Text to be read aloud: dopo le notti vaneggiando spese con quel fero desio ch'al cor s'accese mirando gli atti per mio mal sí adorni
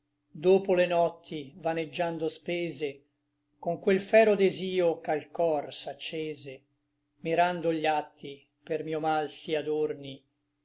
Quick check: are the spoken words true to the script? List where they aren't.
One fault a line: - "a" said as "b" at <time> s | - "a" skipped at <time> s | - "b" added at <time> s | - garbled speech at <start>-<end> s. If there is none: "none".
none